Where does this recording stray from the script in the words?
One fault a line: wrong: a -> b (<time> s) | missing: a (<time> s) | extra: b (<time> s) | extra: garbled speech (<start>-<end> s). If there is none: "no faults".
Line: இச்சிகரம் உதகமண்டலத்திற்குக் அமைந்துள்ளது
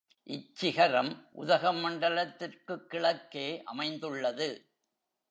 extra: கிழக்கே (2.9 s)